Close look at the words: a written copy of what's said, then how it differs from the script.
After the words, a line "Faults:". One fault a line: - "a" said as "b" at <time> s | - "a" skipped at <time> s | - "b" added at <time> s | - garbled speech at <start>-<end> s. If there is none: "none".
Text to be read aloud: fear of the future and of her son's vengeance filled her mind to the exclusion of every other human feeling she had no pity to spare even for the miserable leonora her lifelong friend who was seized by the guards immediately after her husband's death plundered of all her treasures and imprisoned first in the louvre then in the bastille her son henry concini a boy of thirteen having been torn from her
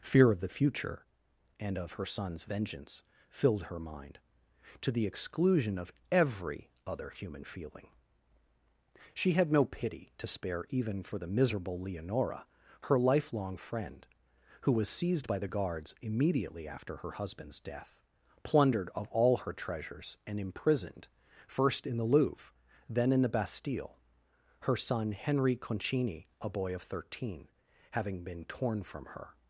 fear of the future and of her son's vengeance filled her mind to the exclusion of every other human feeling she had no pity to spare even for the miserable leonora her lifelong friend who was seized by the guards immediately after her husband's death plundered of all her treasures and imprisoned first in the louvre then in the bastille her son henry concini a boy of thirteen having been torn from her
Faults:
none